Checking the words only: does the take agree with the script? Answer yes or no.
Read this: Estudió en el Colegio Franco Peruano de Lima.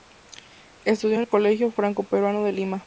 yes